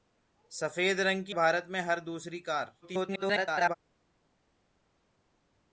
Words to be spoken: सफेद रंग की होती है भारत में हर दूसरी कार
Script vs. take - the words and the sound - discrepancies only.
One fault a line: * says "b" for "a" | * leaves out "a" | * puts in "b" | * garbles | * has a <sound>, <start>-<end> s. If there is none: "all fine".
* leaves out "होती है"
* garbles